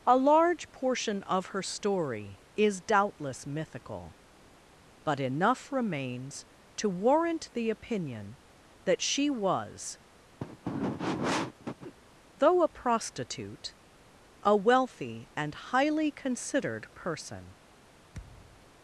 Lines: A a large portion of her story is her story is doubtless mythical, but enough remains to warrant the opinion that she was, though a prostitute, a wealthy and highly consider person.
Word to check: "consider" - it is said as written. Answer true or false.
false